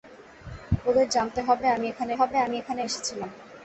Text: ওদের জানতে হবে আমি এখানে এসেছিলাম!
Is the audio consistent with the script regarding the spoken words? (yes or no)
no